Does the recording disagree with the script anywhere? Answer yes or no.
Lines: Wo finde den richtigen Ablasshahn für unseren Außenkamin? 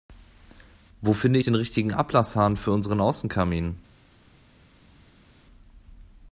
no